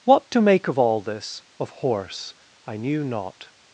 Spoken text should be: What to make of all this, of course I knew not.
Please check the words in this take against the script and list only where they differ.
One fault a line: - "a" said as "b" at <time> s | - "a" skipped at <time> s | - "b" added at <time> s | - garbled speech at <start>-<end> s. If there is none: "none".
- "course" said as "horse" at 1.7 s